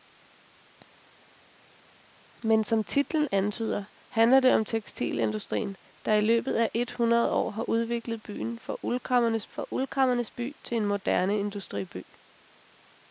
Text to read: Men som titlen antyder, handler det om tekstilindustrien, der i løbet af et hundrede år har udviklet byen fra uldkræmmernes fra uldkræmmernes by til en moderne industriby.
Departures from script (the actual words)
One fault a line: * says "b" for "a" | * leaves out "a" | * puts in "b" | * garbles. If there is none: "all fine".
all fine